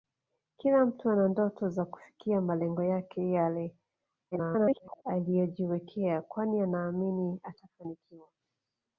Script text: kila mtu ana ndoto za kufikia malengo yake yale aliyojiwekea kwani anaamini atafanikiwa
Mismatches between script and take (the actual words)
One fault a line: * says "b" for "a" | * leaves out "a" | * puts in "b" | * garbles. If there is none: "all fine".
* garbles